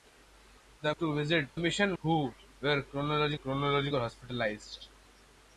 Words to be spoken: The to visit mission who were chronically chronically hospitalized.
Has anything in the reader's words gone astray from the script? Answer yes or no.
no